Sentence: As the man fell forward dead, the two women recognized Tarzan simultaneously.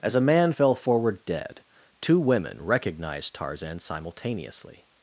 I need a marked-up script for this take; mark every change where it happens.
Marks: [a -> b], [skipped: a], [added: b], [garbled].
As [the -> a] man fell forward dead, [skipped: the] two women recognized Tarzan simultaneously.